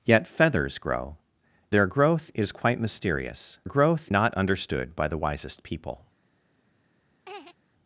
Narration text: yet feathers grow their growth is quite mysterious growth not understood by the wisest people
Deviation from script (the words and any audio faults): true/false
true